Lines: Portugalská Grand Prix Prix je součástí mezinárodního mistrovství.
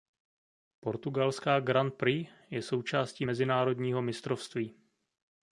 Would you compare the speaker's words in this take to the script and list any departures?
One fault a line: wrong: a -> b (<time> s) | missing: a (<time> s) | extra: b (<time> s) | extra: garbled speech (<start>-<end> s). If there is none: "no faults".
missing: Prix (2.3 s)